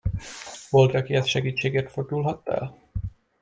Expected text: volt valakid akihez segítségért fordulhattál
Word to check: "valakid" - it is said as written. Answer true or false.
false